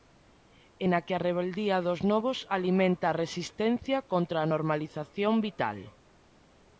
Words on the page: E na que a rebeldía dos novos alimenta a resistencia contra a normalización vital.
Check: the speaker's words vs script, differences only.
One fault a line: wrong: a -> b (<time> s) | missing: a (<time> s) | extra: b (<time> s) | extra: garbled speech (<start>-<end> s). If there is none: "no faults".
no faults